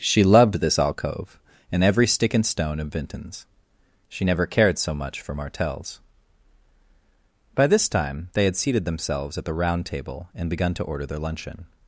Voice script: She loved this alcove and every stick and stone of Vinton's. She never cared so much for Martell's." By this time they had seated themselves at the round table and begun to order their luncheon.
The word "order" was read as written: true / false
true